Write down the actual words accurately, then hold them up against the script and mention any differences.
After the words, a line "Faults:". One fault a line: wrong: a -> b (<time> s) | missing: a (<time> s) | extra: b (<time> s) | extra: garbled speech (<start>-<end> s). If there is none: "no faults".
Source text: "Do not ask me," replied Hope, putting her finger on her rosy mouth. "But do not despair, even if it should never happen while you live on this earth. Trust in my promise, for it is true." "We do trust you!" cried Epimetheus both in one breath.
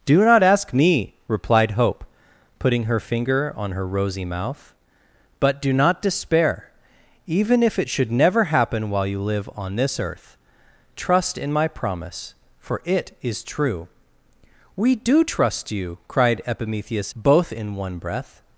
"Do not ask me," replied Hope, putting her finger on her rosy mouth. "But do not despair, even if it should never happen while you live on this earth. Trust in my promise, for it is true." "We do trust you!" cried Epimetheus both in one breath.
Faults:
no faults